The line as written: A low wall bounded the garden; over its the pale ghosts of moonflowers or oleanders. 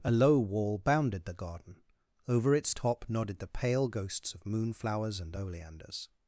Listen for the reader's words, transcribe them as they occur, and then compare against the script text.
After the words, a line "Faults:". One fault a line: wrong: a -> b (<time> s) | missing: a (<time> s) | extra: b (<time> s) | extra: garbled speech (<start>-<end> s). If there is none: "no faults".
A low wall bounded the garden; over its top nodded the pale ghosts of moonflowers and oleanders.
Faults:
extra: top nodded (2.7 s)
wrong: or -> and (5.2 s)